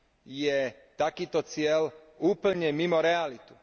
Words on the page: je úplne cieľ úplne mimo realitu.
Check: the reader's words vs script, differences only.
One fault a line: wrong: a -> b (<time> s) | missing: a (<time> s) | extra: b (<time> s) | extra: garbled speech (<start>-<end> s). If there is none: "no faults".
wrong: úplne -> takýto (0.9 s)